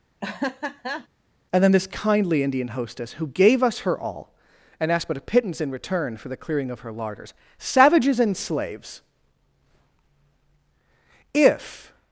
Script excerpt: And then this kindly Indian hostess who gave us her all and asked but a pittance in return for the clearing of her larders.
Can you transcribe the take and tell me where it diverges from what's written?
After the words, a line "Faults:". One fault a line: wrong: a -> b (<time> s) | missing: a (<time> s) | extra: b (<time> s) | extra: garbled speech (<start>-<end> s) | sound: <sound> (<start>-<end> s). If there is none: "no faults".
And then this kindly Indian hostess who gave us her all and asked but a pittance in return for the clearing of her larders. Savages and slaves! If
Faults:
sound: laugh (0.2-1.1 s)
extra: Savages and slaves If (7.6 s)